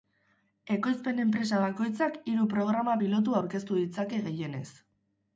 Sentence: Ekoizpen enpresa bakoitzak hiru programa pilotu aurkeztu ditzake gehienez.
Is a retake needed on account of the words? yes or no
no